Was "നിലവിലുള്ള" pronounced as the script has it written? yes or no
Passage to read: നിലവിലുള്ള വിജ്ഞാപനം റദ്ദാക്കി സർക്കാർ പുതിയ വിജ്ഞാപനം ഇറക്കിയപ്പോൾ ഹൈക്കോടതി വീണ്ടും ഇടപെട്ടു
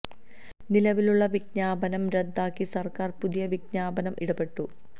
yes